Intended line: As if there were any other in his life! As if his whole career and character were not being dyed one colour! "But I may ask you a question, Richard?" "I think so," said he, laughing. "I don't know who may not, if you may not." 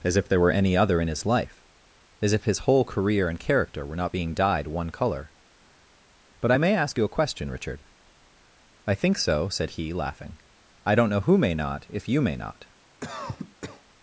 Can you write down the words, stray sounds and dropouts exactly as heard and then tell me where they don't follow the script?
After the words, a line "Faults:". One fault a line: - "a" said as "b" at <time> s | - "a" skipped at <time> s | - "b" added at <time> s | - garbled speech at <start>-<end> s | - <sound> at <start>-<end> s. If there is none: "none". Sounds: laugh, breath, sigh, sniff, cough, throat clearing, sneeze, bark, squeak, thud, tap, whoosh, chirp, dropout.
As if there were any other in his life! As if his whole career and character were not being dyed one colour! "But I may ask you a question, Richard?" "I think so," said he, laughing. "I don't know who may not, if you may not."
Faults:
- cough at 13.0-13.8 s